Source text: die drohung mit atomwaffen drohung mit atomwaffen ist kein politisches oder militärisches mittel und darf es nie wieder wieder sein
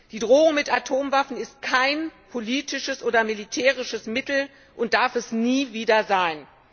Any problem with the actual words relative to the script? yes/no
yes